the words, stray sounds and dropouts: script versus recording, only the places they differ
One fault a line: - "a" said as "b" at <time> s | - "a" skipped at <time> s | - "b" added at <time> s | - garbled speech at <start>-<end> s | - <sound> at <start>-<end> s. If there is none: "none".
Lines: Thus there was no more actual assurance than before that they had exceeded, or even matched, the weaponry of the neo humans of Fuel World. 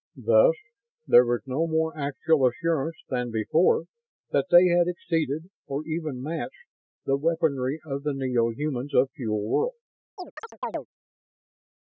- chirp at 10.2-10.9 s